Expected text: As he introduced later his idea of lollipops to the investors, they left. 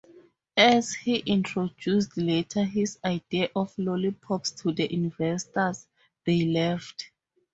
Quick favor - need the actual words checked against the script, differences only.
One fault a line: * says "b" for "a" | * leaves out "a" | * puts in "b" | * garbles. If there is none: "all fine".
all fine